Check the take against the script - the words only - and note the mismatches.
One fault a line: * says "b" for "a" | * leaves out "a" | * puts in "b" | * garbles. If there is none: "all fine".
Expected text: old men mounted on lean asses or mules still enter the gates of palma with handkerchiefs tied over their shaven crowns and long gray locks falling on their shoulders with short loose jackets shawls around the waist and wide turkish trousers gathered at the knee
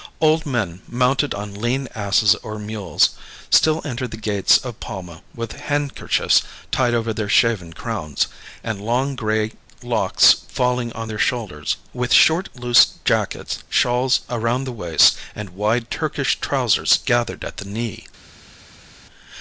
all fine